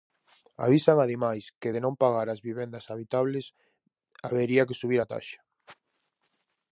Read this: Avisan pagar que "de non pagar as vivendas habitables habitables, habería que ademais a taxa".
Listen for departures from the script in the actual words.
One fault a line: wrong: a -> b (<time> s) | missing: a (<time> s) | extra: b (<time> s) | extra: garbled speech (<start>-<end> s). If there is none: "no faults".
wrong: pagar -> ademais (1.1 s)
missing: habitables (3.5 s)
wrong: ademais -> subir (4.8 s)